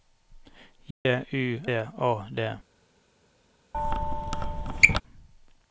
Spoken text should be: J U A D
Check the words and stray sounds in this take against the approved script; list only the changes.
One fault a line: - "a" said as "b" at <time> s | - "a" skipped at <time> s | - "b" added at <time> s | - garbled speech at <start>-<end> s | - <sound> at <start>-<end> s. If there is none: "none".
- dropout at 0.9-1.1 s
- squeak at 3.7-5.0 s